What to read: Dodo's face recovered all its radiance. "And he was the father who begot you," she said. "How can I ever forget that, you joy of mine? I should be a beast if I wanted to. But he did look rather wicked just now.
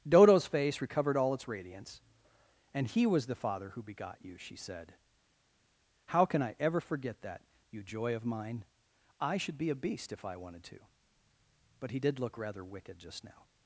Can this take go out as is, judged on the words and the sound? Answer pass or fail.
pass